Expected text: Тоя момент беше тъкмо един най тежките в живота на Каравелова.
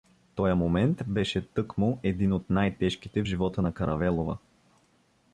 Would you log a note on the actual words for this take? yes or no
yes